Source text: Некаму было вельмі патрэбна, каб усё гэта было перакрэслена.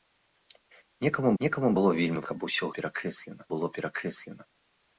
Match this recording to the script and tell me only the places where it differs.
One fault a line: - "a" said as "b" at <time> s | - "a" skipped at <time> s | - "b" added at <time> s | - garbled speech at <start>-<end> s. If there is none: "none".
- "некаму" added at 1.4 s
- "патрэбна" skipped at 2.2 s
- "гэта" said as "перакрэслена" at 2.8 s